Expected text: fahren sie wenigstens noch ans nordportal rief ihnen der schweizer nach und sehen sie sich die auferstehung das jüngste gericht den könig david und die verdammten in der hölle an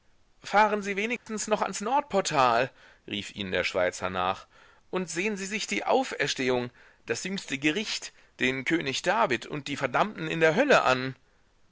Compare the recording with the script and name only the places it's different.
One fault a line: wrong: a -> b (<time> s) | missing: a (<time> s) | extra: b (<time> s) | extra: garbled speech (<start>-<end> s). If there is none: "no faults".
no faults